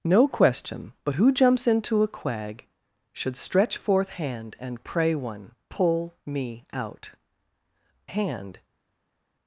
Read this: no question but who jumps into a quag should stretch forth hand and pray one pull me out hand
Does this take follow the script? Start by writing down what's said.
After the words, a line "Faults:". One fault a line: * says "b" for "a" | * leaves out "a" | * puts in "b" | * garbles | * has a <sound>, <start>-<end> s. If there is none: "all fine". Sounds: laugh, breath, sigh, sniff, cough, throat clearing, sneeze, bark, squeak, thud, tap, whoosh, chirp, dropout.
no question but who jumps into a quag should stretch forth hand and pray one pull me out hand
Faults:
all fine